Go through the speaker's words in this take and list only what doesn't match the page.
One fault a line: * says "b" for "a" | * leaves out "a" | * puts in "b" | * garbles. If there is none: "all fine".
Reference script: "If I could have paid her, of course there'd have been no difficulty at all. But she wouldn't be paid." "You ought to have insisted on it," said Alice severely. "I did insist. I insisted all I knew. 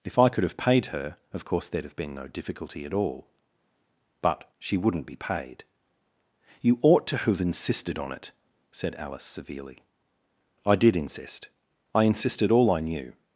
all fine